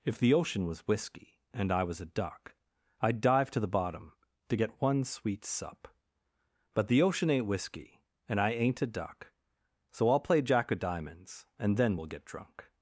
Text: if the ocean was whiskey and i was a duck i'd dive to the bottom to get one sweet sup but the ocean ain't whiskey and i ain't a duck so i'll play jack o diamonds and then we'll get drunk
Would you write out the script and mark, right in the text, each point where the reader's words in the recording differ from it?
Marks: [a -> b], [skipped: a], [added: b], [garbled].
if the ocean was whiskey and i was a duck i'd dive to the bottom to get one sweet sup but the ocean ain't whiskey and i ain't a duck so i'll play jack o diamonds and then we'll get drunk